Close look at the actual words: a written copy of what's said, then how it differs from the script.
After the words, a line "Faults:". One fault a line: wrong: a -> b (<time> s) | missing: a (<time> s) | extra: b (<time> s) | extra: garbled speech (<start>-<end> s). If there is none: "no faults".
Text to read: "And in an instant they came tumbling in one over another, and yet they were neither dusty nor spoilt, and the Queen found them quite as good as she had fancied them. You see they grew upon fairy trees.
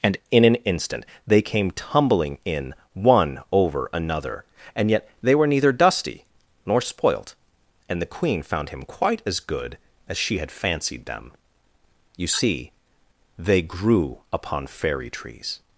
"And in an instant they came tumbling in one over another, and yet they were neither dusty nor spoilt, and the Queen found him quite as good as she had fancied them. You see they grew upon fairy trees.
Faults:
wrong: them -> him (8.7 s)